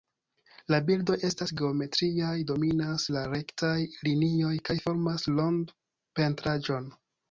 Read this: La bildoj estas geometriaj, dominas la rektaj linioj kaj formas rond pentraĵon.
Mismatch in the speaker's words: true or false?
false